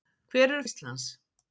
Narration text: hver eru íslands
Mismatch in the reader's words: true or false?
false